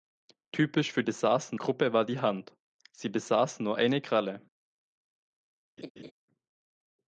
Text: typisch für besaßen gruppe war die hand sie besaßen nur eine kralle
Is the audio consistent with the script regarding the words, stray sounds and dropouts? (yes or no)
no